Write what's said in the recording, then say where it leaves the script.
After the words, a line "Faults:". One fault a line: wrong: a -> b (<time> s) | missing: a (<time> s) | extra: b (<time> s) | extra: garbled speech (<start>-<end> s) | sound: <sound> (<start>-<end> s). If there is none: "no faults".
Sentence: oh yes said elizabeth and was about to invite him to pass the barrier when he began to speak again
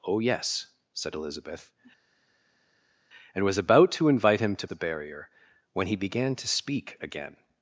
oh yes said elizabeth and was about to invite him to the barrier when he began to speak again
Faults:
missing: pass (4.7 s)